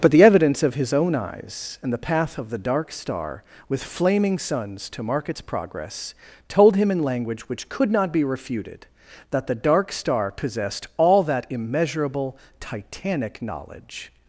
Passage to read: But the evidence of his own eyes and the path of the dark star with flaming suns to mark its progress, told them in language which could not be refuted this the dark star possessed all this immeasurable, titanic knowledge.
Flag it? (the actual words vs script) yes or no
yes